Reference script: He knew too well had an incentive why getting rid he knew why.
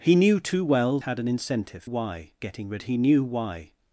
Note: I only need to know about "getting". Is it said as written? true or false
true